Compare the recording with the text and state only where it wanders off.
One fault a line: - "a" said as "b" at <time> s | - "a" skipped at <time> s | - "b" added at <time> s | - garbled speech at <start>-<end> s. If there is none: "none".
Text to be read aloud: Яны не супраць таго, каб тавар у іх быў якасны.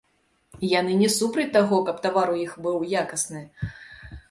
none